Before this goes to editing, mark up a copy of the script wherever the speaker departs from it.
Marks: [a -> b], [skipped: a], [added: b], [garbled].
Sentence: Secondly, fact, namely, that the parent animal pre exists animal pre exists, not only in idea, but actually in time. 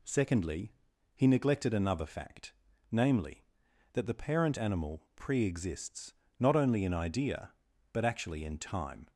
Secondly, [added: he neglected another] fact, namely, that the parent animal pre exists [skipped: animal pre exists,] not only in idea, but actually in time.